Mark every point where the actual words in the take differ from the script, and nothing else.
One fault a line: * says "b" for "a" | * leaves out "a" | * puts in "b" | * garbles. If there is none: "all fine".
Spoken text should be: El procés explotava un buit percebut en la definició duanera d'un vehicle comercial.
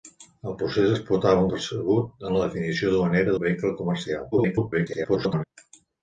* leaves out "buit"
* leaves out "d'un"
* garbles